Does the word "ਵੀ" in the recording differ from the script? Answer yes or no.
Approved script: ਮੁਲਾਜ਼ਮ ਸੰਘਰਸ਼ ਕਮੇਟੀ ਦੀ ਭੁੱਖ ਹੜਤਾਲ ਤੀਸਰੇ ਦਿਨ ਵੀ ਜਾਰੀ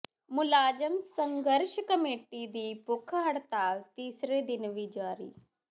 no